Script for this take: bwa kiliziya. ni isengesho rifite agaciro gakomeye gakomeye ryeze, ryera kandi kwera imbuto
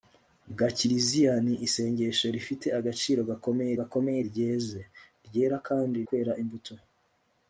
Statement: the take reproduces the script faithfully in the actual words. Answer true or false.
true